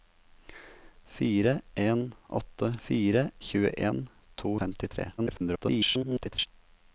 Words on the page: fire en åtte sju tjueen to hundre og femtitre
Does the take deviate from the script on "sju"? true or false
true